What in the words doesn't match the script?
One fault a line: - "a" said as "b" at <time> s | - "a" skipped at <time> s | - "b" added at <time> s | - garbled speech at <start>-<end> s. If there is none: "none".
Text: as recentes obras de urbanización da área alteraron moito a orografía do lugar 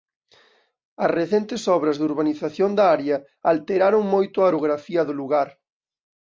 none